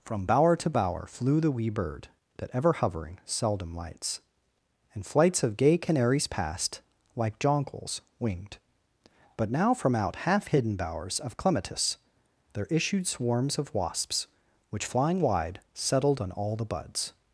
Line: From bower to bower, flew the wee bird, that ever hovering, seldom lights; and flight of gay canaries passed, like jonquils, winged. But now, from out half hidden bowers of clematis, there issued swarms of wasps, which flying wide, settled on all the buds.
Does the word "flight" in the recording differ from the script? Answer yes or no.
yes